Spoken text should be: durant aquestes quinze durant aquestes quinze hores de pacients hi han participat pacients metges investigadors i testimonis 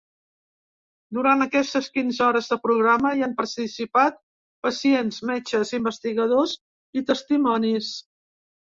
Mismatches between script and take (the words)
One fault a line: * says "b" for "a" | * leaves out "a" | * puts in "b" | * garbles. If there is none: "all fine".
* leaves out "durant aquestes quinze"
* says "programa" for "pacients"